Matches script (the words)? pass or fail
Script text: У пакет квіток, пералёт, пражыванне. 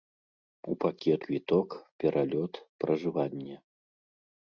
pass